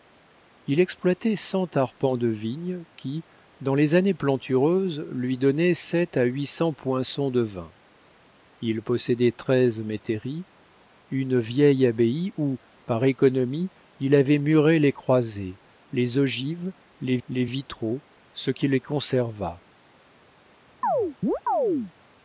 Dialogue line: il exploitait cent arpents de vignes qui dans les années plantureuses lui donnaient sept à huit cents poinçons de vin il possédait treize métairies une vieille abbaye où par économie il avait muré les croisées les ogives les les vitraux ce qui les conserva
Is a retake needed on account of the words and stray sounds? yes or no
yes